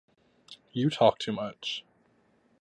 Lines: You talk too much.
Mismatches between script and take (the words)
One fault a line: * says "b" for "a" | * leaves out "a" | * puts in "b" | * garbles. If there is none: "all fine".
all fine